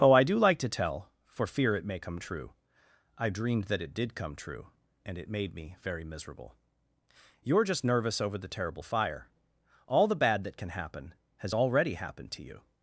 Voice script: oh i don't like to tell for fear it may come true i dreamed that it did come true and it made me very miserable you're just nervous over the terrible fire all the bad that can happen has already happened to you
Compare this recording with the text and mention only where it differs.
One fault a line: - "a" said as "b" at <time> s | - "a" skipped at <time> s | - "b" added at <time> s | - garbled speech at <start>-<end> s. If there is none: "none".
- "don't" said as "do" at 0.2 s